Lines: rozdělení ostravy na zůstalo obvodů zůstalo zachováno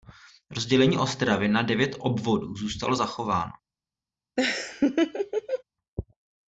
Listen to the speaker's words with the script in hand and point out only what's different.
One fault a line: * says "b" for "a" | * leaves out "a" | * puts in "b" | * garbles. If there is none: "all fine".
* says "devět" for "zůstalo"